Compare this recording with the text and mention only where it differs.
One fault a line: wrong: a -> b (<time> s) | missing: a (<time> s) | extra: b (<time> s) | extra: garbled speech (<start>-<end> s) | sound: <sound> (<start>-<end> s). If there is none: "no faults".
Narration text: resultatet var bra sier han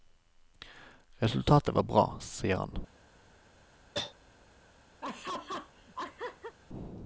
sound: cough (3.9-4.1 s)
sound: laugh (5.0-6.6 s)